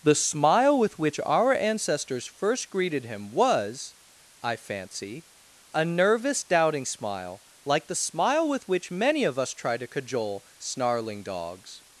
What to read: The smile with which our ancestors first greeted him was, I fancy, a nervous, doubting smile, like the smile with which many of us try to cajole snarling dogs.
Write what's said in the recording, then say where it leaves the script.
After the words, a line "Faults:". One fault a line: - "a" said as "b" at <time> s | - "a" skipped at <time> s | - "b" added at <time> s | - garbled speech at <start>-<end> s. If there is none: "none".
The smile with which our ancestors first greeted him was, I fancy, a nervous, doubting smile, like the smile with which many of us try to cajole snarling dogs.
Faults:
none